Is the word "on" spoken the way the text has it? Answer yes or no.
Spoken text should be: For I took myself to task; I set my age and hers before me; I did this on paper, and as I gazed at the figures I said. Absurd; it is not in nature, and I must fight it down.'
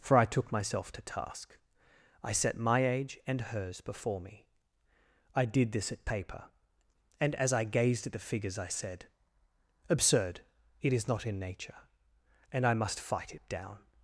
no